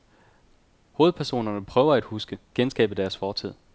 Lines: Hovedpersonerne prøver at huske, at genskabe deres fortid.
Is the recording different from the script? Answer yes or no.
yes